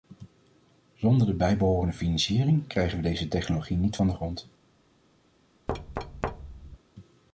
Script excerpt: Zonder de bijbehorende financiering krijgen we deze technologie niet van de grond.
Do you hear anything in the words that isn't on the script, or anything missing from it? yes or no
no